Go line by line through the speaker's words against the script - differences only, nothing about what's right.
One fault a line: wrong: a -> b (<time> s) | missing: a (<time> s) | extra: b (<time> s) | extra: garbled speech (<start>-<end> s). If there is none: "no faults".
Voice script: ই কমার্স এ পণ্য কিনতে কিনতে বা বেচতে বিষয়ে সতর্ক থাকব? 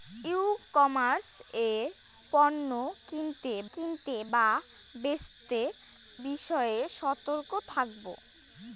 no faults